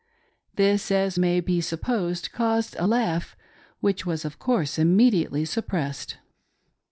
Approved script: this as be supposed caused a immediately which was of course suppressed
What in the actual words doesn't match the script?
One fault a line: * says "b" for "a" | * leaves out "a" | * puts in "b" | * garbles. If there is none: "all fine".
* puts in "may"
* says "laugh" for "immediately"
* puts in "immediately"